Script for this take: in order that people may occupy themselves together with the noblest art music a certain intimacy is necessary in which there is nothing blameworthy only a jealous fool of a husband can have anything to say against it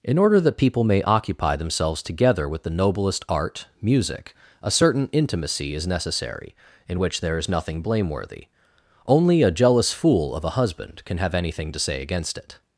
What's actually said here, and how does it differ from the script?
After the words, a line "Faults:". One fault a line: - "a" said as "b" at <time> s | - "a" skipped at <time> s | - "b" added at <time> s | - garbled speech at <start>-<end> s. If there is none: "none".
in order that people may occupy themselves together with the noblest art music a certain intimacy is necessary in which there is nothing blameworthy only a jealous fool of a husband can have anything to say against it
Faults:
none